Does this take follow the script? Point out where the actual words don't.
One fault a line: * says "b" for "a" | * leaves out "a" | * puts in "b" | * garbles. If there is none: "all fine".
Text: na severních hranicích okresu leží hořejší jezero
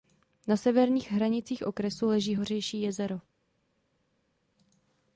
all fine